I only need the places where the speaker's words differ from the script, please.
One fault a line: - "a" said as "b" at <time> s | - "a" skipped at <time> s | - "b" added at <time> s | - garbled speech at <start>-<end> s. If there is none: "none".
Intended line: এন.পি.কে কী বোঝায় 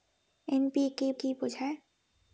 none